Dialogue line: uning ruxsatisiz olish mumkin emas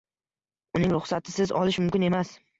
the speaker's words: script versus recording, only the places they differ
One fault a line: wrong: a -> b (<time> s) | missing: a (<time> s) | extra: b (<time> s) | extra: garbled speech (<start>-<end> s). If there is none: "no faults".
no faults